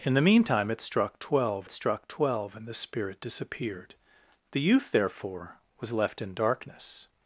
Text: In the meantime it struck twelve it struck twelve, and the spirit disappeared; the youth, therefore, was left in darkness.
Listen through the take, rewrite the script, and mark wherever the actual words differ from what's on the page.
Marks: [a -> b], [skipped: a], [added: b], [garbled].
In the meantime it struck twelve it struck twelve, and the spirit disappeared; the youth, therefore, was left in darkness.